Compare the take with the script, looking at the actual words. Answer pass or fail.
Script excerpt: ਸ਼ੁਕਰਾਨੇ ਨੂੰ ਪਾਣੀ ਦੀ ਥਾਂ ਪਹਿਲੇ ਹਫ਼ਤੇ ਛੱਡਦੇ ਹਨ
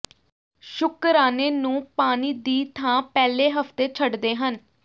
pass